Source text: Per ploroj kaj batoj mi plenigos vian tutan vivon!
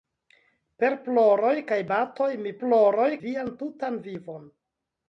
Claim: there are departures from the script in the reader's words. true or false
true